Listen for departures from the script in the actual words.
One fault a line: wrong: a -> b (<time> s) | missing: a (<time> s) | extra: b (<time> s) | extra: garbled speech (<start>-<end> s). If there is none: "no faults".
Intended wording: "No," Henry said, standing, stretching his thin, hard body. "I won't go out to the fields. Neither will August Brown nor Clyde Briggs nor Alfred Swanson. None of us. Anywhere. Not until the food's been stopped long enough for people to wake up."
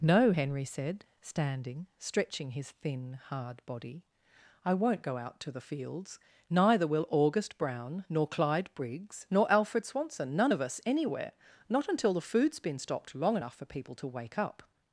no faults